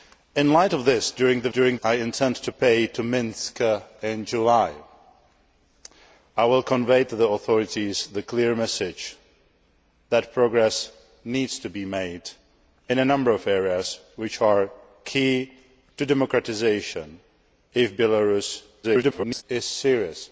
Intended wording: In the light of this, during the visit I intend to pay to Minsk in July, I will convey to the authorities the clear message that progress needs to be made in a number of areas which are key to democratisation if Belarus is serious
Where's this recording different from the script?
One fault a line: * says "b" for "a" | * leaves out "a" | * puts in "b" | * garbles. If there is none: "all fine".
* says "during" for "visit"
* garbles